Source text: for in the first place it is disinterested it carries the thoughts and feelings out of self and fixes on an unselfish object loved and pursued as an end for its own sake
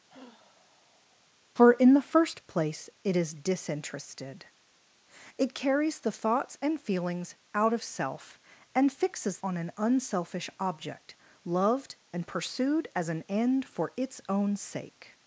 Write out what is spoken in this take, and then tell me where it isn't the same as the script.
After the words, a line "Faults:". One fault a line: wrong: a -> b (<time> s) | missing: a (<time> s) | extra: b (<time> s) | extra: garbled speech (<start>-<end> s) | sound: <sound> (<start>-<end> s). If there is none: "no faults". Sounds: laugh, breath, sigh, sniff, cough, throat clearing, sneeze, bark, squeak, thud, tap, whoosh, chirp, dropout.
for in the first place it is disinterested it carries the thoughts and feelings out of self and fixes on an unselfish object loved and pursued as an end for its own sake
Faults:
sound: sigh (0.1-1.3 s)